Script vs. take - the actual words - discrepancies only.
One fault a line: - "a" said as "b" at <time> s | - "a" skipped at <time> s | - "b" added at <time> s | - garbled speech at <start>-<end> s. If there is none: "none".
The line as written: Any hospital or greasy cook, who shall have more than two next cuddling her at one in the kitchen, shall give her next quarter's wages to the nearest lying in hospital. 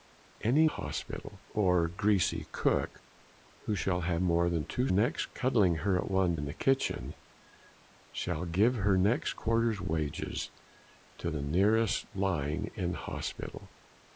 none